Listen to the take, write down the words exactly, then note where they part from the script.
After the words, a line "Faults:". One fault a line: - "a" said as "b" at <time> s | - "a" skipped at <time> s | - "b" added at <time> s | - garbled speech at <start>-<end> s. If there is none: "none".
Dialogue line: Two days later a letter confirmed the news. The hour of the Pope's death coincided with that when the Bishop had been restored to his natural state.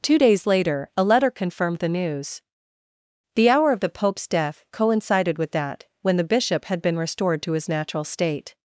Two days later a letter confirmed the news. The hour of the Pope's death coincided with that when the Bishop had been restored to his natural state.
Faults:
none